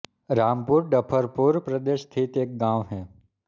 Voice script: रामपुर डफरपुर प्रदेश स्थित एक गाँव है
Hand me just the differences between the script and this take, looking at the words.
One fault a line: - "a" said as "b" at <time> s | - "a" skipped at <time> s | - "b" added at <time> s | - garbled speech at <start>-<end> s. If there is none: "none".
none